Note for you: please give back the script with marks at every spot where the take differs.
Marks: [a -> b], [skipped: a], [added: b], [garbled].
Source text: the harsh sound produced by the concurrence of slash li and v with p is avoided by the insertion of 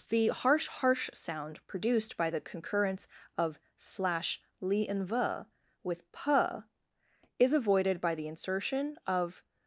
the harsh [added: harsh] sound produced by the concurrence of slash li and v with p is avoided by the insertion of